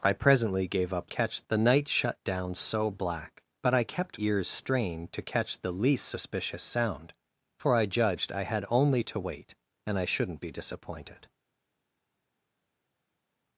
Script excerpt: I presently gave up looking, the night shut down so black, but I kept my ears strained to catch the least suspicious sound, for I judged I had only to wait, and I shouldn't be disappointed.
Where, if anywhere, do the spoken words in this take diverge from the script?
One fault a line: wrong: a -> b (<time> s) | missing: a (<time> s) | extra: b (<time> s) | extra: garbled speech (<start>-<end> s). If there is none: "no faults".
wrong: looking -> catch (1.1 s)
missing: my (4.2 s)